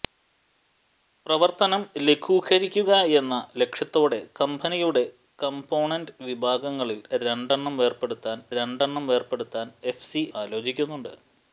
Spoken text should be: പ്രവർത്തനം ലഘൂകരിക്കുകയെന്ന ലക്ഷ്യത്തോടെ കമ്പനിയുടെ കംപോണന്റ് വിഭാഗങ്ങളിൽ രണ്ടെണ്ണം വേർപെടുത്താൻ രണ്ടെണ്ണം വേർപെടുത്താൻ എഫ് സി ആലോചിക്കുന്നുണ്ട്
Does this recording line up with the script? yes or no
yes